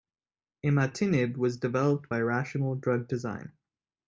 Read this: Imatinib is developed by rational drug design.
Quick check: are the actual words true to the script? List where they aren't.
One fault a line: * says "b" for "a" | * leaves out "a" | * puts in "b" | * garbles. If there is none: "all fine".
* says "was" for "is"